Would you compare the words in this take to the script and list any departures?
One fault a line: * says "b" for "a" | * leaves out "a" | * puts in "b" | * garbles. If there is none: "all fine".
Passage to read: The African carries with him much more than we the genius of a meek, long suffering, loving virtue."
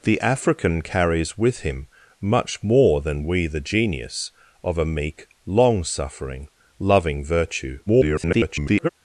* garbles